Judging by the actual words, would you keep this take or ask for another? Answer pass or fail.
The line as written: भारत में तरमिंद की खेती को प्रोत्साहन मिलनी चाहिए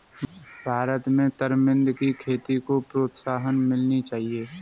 pass